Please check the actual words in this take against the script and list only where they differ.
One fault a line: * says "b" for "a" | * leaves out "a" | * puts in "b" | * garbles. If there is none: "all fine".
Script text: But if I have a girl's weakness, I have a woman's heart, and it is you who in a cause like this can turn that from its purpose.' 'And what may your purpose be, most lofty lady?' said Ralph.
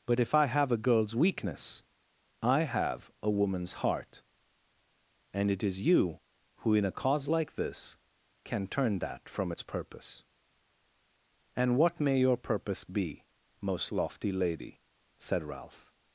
all fine